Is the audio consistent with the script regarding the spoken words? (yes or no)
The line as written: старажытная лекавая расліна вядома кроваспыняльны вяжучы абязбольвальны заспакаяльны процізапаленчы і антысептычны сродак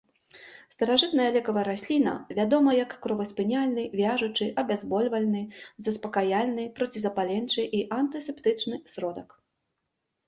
no